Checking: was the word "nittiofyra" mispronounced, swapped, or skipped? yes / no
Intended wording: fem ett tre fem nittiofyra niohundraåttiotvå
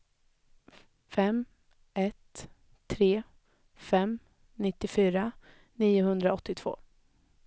no